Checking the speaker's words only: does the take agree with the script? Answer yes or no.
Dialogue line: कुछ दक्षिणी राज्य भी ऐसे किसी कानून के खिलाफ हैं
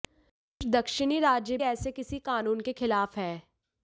no